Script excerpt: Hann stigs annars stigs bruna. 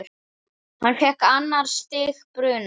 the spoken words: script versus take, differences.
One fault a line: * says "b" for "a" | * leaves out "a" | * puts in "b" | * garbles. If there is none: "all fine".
* says "fékk" for "stigs"